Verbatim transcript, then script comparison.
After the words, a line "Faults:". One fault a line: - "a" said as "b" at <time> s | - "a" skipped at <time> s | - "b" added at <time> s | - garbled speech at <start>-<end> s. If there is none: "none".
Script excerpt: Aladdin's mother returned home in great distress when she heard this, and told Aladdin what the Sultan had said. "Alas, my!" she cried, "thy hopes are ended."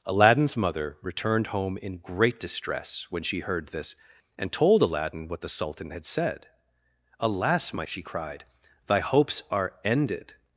Aladdin's mother returned home in great distress when she heard this, and told Aladdin what the Sultan had said. "Alas, my!" she cried, "thy hopes are ended."
Faults:
none